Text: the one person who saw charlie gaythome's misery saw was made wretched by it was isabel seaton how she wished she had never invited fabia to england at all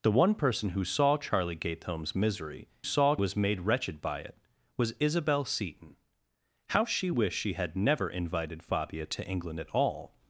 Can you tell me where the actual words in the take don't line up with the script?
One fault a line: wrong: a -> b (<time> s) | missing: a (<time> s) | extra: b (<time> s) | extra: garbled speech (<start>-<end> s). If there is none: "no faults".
no faults